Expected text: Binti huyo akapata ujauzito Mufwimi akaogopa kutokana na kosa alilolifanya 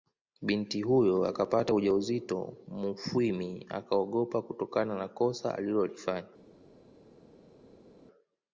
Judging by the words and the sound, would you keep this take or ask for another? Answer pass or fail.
pass